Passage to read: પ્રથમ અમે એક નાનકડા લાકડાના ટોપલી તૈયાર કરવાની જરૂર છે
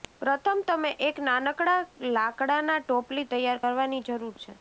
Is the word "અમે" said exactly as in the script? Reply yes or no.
no